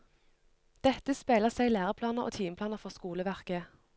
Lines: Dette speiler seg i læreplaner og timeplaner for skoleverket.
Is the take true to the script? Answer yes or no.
yes